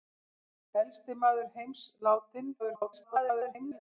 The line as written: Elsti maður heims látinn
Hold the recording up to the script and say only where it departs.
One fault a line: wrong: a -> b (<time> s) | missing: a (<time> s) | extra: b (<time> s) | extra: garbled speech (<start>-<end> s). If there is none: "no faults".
extra: garbled speech (2.6-3.8 s)